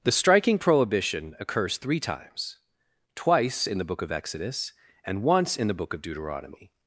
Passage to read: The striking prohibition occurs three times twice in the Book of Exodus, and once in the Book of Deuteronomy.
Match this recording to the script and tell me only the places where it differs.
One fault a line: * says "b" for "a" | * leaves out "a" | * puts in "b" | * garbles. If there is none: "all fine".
all fine